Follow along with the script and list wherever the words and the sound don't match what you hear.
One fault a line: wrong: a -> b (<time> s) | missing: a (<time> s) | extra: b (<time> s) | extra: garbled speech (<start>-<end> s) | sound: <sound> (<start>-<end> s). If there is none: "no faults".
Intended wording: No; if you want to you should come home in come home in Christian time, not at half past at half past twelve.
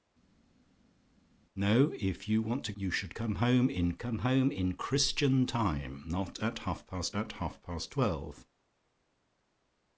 no faults